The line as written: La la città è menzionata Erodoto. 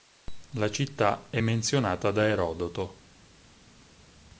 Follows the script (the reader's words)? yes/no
no